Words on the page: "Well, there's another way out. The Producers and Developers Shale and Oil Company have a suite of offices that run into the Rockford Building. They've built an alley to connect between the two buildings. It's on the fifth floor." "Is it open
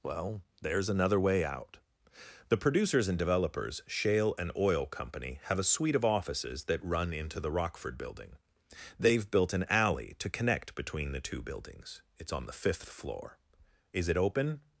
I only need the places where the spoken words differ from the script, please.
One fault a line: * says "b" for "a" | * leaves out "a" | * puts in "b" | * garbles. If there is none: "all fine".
all fine